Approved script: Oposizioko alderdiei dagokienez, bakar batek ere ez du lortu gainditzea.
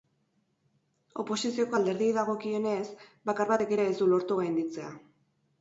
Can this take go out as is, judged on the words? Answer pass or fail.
pass